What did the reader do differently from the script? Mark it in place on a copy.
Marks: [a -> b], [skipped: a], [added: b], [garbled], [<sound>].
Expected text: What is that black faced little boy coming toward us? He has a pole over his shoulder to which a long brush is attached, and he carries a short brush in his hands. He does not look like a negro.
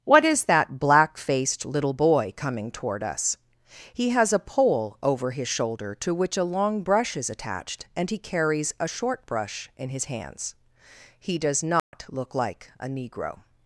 What is that black faced little boy coming toward us? He has a pole over his shoulder to which a long brush is attached, and he carries a short brush in his hands. He does not [dropout] look like a negro.